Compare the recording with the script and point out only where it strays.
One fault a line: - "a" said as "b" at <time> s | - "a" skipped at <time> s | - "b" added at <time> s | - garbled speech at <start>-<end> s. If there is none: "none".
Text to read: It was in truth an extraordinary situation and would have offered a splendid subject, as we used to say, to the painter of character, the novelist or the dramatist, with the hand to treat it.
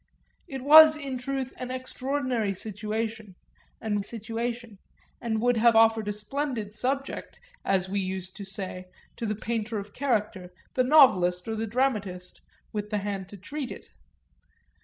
- "situation and" added at 4.0 s